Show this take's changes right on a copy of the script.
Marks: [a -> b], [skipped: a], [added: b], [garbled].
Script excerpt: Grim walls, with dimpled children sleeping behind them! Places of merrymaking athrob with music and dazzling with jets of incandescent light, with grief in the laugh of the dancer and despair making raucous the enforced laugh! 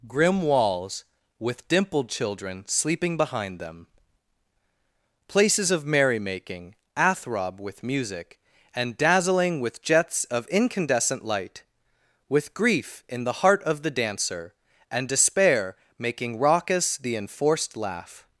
Grim walls, with dimpled children sleeping behind them! Places of merrymaking athrob with music and dazzling with jets of incandescent light, with grief in the [laugh -> heart] of the dancer and despair making raucous the enforced laugh!